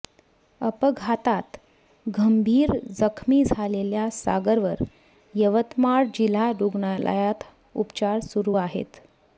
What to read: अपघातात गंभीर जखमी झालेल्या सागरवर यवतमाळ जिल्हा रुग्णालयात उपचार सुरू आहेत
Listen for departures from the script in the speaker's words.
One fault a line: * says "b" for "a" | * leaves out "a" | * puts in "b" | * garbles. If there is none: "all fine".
all fine